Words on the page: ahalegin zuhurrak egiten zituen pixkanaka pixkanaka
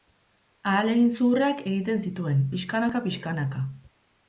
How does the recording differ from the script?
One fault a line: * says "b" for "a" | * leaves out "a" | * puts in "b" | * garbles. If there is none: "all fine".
all fine